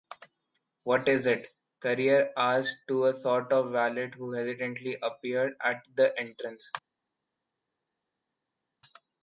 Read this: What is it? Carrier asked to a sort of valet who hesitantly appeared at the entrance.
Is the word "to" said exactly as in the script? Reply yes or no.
yes